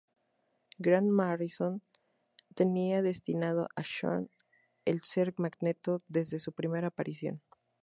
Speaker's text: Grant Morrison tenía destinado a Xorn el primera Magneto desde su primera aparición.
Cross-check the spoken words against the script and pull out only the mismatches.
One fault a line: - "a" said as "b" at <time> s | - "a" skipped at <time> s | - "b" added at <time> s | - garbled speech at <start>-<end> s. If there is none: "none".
- "primera" said as "ser" at 5.0 s